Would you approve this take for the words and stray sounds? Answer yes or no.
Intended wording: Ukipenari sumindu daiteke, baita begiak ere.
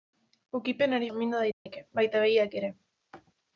no